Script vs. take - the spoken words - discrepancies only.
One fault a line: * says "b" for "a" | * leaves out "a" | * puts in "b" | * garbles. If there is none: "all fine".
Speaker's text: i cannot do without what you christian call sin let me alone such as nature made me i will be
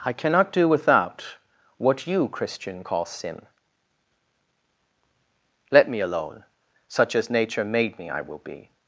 all fine